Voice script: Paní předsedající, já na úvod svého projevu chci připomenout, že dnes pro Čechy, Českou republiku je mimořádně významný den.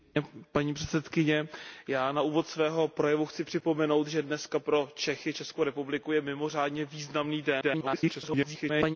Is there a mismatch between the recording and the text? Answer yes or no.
yes